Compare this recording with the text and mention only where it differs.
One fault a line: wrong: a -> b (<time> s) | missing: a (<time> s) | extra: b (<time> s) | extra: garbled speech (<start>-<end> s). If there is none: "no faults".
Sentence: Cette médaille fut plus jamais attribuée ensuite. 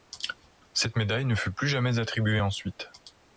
extra: ne (1.3 s)